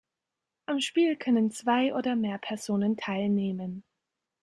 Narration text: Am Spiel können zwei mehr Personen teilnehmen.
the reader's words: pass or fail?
fail